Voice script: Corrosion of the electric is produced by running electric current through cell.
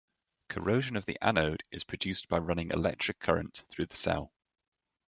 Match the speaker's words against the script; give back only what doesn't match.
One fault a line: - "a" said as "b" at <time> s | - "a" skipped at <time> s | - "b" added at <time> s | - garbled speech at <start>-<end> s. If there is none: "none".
- "electric" said as "anode" at 1.2 s
- "the" added at 3.8 s